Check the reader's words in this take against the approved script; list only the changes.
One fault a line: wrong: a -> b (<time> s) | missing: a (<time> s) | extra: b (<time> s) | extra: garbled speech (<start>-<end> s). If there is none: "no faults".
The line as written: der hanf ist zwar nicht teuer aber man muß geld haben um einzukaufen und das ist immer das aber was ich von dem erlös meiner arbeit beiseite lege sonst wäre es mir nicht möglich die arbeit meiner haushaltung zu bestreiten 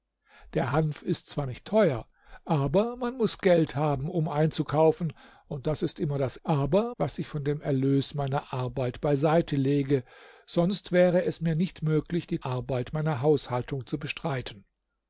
no faults